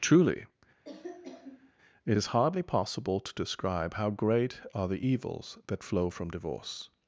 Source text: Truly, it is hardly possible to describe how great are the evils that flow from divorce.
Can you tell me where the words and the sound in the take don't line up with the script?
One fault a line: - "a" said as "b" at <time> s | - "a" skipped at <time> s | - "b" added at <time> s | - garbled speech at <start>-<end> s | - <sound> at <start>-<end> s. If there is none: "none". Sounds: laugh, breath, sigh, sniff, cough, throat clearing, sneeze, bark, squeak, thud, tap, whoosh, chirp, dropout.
- cough at 0.8-1.7 s